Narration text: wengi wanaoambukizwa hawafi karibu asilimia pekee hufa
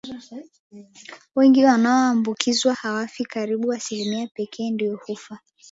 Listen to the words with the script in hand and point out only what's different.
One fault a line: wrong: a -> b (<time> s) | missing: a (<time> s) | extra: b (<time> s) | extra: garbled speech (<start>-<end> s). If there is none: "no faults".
extra: ndio (4.7 s)